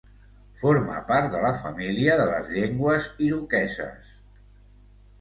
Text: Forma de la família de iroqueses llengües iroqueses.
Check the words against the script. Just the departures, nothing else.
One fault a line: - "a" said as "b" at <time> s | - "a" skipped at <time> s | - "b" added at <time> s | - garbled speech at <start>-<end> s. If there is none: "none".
- "part" added at 1.1 s
- "iroqueses" said as "les" at 2.3 s